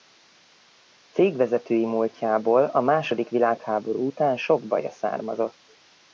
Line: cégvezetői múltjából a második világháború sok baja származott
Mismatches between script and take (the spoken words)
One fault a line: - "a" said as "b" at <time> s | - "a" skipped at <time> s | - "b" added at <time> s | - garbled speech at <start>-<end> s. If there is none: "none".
- "után" added at 4.0 s